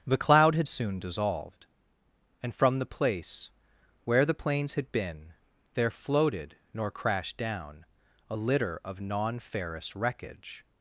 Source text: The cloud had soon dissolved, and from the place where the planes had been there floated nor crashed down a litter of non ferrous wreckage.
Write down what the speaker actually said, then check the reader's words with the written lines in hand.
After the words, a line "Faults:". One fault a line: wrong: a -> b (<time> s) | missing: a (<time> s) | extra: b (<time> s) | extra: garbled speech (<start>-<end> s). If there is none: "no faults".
The cloud had soon dissolved, and from the place where the planes had been there floated nor crashed down a litter of non ferrous wreckage.
Faults:
no faults